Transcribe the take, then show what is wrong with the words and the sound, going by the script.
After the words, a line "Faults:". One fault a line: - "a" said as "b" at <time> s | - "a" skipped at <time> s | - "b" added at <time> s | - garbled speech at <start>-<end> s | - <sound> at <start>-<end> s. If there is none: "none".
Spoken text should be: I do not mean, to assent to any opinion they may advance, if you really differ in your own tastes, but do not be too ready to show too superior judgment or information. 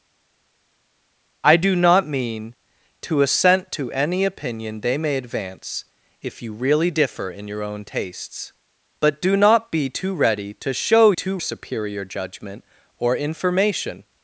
I do not mean, to assent to any opinion they may advance, if you really differ in your own tastes, but do not be too ready to show too superior judgment or information.
Faults:
none